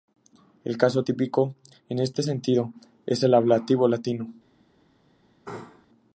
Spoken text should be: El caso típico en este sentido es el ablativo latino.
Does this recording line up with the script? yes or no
yes